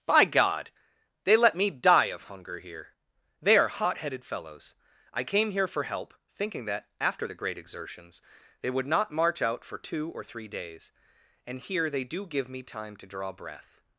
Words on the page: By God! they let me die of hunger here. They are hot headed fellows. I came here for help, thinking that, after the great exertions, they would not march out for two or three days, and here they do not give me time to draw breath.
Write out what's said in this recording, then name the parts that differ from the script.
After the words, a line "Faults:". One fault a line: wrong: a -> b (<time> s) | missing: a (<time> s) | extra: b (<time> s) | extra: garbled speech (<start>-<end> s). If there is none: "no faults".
By God! they let me die of hunger here. They are hot headed fellows. I came here for help, thinking that, after the great exertions, they would not march out for two or three days, and here they do give me time to draw breath.
Faults:
missing: not (12.3 s)